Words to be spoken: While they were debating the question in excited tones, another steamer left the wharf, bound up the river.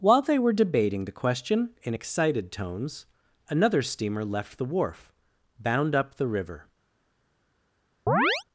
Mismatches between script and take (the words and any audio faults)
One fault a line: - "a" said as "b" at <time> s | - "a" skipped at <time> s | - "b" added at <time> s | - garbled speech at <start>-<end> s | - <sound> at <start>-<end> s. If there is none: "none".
- chirp at 8.1-8.4 s